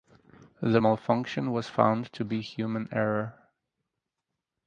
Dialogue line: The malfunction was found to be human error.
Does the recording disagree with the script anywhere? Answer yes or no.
no